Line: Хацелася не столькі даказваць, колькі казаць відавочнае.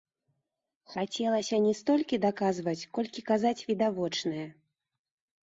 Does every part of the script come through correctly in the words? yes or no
yes